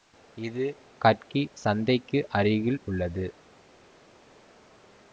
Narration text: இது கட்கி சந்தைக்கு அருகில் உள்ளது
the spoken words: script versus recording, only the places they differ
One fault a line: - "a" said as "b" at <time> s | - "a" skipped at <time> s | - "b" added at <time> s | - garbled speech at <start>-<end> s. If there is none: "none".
none